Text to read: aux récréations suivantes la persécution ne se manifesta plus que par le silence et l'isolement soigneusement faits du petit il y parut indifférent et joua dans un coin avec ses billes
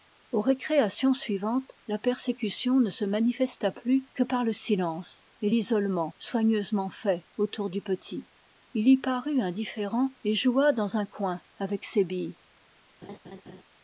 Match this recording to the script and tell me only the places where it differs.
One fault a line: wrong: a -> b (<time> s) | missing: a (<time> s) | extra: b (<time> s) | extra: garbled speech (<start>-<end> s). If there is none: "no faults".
extra: autour (7.4 s)